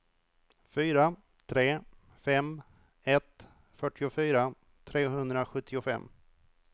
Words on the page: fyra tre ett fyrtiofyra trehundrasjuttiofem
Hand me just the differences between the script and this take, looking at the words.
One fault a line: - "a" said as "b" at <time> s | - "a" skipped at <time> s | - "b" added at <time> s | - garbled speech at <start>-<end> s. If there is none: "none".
- "fem" added at 2.2 s